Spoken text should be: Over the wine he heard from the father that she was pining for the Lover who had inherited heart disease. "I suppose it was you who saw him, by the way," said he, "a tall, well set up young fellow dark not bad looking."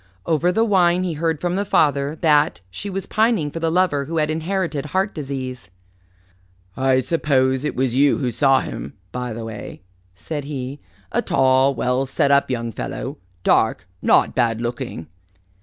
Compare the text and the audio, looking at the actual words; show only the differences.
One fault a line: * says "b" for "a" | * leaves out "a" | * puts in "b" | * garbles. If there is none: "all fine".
all fine